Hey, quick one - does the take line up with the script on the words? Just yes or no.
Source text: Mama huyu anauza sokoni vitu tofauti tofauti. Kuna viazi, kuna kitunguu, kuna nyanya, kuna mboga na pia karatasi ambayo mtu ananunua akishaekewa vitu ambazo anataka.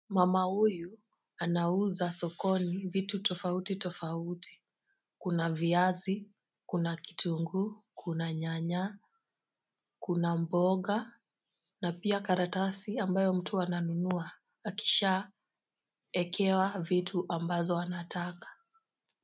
yes